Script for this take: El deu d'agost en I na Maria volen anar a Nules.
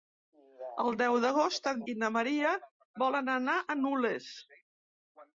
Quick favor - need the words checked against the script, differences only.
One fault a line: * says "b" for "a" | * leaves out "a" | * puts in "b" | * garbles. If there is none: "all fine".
all fine